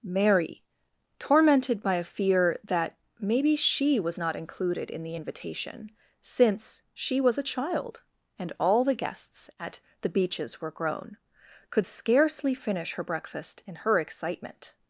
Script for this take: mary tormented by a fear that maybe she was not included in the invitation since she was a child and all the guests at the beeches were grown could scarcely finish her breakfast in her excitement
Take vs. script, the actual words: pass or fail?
pass